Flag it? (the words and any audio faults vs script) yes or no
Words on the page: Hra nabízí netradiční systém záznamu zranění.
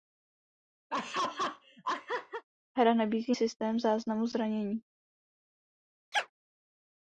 yes